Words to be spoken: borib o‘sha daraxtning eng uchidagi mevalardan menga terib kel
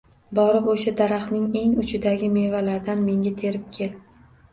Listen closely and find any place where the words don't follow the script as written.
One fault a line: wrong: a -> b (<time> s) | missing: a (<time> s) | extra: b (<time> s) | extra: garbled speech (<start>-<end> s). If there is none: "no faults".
no faults